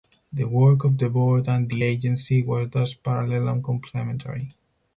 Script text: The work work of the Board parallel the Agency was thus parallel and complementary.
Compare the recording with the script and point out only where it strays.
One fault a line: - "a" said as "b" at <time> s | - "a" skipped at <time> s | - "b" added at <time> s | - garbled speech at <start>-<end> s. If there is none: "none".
- "work" skipped at 0.8 s
- "parallel" said as "and" at 1.5 s